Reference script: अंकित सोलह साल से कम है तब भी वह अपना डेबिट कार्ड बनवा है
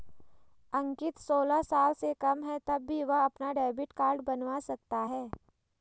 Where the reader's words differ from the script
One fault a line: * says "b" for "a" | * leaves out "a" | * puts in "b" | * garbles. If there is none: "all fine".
* puts in "सकता"